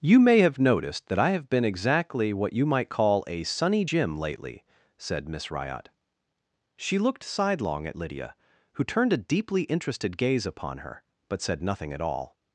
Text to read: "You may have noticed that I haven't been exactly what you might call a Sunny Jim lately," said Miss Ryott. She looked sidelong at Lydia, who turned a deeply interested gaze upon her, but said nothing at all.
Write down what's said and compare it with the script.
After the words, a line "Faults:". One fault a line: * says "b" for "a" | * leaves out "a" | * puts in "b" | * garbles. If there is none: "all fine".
"You may have noticed that I have been exactly what you might call a Sunny Jim lately," said Miss Ryott. She looked sidelong at Lydia, who turned a deeply interested gaze upon her, but said nothing at all.
Faults:
* says "have" for "haven't"